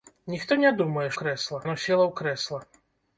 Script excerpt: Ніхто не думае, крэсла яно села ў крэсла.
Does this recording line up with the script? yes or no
yes